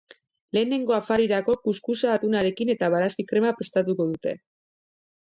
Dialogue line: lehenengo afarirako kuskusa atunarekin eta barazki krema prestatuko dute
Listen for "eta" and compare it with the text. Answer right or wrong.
right